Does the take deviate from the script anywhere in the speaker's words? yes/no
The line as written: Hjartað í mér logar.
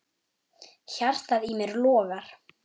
no